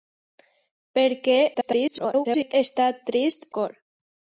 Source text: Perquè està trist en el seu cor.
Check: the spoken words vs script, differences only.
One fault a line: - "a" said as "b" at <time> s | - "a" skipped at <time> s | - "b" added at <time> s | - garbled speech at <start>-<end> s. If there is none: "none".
- garbled speech at 1.5-2.5 s
- "en el seu" skipped at 3.5 s